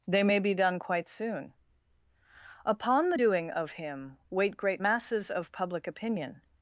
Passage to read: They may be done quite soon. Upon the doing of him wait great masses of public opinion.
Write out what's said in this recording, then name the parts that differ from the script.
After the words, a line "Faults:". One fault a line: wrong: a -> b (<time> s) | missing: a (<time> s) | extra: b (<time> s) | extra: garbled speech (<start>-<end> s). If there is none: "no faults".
They may be done quite soon. Upon the doing of him wait great masses of public opinion.
Faults:
no faults